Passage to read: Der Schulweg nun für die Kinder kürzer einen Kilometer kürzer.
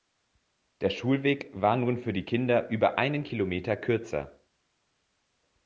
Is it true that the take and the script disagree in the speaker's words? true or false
true